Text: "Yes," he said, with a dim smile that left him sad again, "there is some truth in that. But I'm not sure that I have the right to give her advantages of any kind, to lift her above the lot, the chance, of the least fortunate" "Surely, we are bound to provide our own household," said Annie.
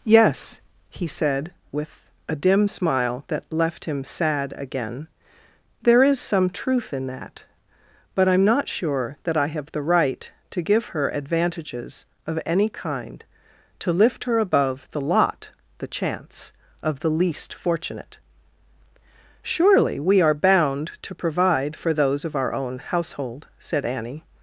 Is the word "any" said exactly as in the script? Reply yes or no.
yes